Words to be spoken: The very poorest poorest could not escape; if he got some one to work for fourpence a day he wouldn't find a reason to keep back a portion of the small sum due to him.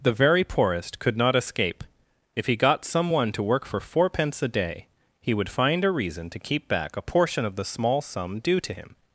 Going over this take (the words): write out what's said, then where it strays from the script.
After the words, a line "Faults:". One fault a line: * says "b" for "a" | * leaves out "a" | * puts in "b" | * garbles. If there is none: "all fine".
The very poorest could not escape; if he got some one to work for fourpence a day he would find a reason to keep back a portion of the small sum due to him.
Faults:
* leaves out "poorest"
* says "would" for "wouldn't"